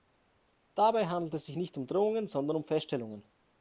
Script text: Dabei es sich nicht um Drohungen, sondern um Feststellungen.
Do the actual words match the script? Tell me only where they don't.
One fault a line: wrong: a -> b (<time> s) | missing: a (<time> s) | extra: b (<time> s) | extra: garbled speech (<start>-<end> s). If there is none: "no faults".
extra: handelt (1.1 s)